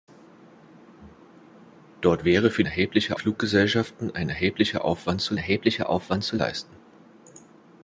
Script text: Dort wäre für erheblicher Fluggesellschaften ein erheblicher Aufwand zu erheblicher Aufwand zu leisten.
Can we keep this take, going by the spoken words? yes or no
yes